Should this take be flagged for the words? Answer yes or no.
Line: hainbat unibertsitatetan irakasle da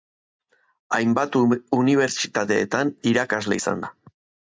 yes